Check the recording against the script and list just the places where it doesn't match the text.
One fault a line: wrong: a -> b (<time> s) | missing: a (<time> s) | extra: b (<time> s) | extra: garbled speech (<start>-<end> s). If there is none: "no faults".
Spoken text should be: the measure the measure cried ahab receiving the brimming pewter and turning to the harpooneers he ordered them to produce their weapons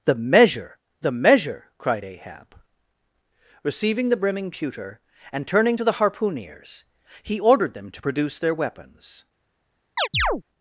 no faults